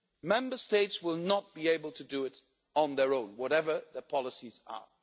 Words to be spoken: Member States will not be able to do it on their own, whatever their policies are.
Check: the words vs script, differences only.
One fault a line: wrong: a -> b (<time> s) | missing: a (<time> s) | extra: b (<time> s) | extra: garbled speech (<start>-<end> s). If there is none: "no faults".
no faults